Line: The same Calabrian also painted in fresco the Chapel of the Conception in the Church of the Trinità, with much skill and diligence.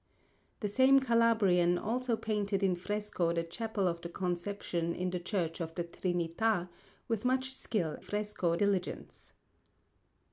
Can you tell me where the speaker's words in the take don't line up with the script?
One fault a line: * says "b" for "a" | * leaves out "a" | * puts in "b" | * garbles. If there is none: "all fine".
* says "fresco" for "and"